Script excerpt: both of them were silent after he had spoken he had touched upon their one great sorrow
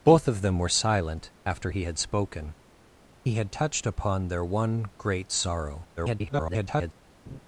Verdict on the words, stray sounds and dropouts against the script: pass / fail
fail